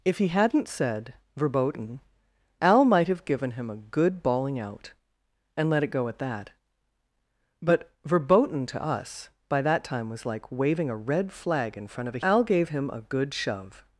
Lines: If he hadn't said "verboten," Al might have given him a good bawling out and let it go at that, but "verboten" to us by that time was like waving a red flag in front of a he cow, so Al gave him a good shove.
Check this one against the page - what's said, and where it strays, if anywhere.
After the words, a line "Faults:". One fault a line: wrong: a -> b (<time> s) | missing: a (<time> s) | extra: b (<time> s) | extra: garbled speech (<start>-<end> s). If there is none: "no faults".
If he hadn't said "verboten," Al might have given him a good bawling out and let it go at that, but "verboten" to us by that time was like waving a red flag in front of a Al gave him a good shove.
Faults:
missing: he cow so (12.2 s)